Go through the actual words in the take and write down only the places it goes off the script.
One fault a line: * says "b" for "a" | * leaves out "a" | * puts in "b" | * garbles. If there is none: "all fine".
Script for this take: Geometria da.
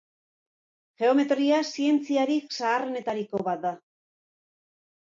* puts in "zientziarik zaharrenetariko bat"